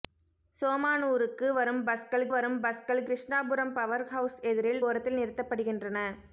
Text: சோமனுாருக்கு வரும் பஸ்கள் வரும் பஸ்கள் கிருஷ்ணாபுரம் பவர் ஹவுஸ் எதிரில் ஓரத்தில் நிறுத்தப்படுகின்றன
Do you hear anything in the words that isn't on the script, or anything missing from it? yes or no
no